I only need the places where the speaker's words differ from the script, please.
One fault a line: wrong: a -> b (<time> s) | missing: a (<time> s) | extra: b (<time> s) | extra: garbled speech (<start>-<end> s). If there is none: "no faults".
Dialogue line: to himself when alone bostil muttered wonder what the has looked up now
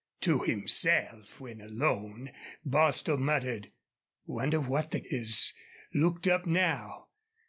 no faults